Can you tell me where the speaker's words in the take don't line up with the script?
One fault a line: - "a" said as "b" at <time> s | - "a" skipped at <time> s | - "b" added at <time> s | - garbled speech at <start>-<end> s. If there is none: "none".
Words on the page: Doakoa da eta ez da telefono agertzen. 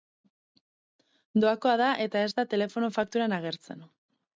- "fakturan" added at 3.0 s